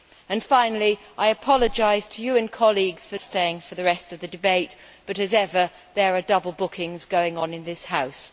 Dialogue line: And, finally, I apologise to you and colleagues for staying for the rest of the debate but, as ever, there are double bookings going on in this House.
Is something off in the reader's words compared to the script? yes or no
no